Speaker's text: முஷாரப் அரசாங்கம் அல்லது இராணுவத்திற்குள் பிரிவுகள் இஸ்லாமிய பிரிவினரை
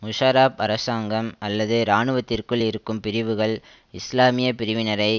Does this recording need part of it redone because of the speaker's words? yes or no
yes